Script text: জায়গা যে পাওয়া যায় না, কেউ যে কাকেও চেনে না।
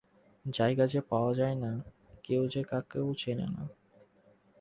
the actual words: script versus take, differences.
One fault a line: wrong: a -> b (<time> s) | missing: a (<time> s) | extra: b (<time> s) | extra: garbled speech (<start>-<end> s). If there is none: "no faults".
no faults